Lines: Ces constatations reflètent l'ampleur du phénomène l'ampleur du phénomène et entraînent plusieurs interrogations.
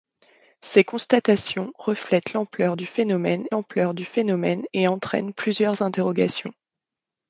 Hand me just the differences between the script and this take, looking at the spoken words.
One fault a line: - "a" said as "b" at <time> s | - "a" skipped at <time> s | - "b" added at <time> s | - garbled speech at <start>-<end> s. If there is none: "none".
none